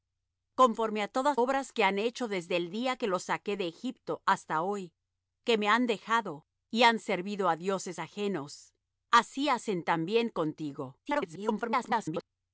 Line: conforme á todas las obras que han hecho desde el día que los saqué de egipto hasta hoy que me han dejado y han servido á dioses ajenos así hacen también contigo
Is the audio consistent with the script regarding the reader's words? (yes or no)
no